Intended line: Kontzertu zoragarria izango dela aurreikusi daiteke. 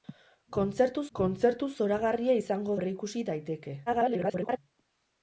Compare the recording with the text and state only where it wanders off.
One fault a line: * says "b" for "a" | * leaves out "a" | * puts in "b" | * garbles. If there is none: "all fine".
* puts in "kontzertu"
* leaves out "dela"
* garbles